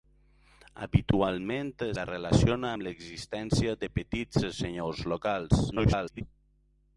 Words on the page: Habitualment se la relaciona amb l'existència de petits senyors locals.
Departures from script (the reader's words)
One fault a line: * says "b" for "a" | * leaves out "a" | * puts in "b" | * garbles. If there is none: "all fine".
* leaves out "se"
* garbles